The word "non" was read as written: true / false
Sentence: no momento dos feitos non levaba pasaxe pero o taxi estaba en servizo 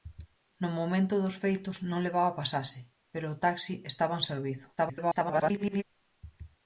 true